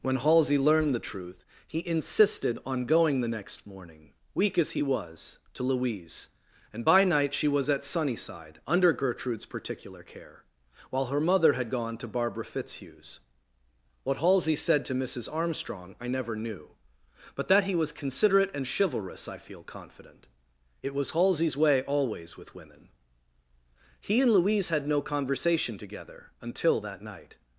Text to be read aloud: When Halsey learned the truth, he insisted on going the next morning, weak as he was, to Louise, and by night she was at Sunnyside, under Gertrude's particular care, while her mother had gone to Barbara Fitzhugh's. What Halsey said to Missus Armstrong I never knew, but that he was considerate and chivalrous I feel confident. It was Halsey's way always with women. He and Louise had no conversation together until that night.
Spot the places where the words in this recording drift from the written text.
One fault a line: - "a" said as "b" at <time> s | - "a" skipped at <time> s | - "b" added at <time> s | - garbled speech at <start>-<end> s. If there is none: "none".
none